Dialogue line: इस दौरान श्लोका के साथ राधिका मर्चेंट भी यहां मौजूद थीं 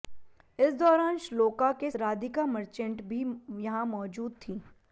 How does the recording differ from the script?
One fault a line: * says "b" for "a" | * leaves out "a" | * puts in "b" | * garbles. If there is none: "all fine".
* leaves out "साथ"